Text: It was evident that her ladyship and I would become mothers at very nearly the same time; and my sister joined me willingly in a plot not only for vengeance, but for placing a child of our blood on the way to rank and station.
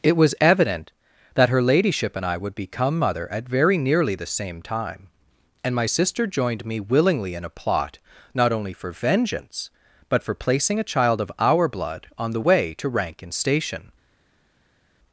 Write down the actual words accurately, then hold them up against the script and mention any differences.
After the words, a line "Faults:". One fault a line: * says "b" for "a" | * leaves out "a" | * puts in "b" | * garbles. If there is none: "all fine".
It was evident that her ladyship and I would become mother at very nearly the same time; and my sister joined me willingly in a plot not only for vengeance, but for placing a child of our blood on the way to rank and station.
Faults:
* says "mother" for "mothers"